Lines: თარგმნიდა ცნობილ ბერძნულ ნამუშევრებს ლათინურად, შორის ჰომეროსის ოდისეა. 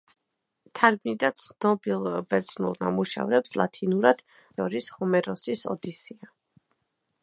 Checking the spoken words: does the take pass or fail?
pass